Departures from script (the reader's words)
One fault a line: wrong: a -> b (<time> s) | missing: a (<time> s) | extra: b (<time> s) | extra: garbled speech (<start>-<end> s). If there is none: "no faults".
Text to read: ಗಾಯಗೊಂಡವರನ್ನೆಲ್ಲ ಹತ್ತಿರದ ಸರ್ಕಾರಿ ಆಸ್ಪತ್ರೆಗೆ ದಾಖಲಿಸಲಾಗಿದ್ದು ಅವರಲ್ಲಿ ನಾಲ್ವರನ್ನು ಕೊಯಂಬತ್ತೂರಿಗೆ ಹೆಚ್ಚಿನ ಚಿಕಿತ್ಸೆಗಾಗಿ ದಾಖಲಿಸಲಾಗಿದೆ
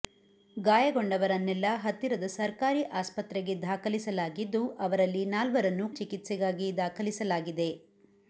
missing: ಕೊಯಂಬತ್ತೂರಿಗೆ ಹೆಚ್ಚಿನ (5.9 s)